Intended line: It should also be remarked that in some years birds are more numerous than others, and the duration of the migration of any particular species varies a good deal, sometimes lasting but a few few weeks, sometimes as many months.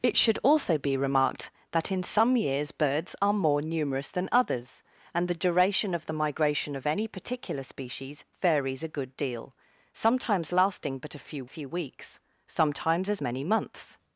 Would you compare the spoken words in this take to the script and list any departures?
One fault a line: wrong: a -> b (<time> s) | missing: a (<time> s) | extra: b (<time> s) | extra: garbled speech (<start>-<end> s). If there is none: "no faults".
no faults